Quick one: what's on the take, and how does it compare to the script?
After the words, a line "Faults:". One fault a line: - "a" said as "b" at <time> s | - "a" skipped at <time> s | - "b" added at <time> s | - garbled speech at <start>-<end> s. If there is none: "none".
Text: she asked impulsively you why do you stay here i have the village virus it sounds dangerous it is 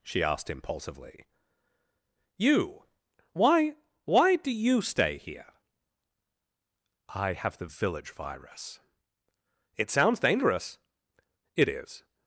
she asked impulsively you why why do you stay here i have the village virus it sounds dangerous it is
Faults:
- "why" added at 4.1 s